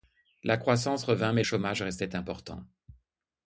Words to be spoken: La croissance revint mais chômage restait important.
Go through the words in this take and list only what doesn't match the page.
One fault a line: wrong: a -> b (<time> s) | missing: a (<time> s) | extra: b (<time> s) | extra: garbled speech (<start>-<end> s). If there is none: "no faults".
no faults